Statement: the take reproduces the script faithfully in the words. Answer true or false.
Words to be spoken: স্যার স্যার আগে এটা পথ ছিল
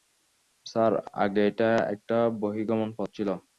false